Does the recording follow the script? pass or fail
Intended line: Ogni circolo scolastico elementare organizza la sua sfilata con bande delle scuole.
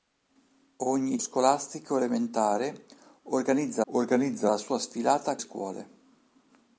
fail